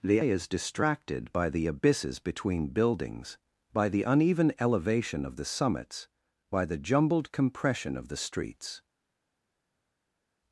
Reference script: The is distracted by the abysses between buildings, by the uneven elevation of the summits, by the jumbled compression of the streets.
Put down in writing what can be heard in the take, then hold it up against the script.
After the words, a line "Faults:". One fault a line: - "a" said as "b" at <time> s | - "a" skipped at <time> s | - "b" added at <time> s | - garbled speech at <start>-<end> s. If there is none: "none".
The is distracted by the abysses between buildings, by the uneven elevation of the summits, by the jumbled compression of the streets.
Faults:
none